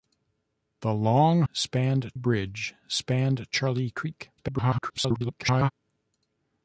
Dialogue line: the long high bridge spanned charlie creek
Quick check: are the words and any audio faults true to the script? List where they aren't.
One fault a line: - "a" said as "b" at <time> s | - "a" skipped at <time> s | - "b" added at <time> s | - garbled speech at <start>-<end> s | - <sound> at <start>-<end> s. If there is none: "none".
- "high" said as "spanned" at 1.5 s
- garbled speech at 4.4-5.7 s